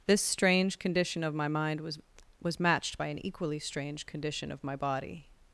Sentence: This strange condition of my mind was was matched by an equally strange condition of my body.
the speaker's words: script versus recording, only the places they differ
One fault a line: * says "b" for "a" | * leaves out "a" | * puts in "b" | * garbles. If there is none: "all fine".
all fine